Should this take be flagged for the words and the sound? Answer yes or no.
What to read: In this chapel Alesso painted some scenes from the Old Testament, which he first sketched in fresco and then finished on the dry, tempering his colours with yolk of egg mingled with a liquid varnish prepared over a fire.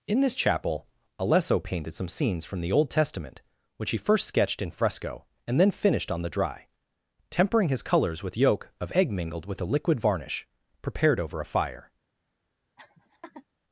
yes